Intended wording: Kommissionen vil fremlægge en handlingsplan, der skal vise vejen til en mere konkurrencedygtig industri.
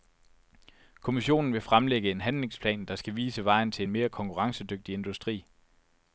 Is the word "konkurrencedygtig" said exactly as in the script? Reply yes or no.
yes